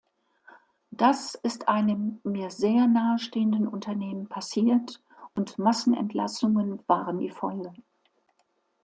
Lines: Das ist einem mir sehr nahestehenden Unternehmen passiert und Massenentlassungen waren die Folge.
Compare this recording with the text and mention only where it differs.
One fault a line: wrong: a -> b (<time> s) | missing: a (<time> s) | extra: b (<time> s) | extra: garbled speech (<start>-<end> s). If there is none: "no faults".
no faults